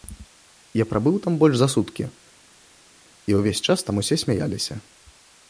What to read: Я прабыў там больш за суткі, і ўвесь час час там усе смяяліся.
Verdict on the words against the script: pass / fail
fail